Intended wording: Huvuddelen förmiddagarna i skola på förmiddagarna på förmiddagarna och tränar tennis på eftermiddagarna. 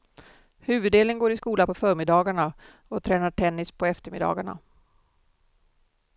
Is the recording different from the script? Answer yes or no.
yes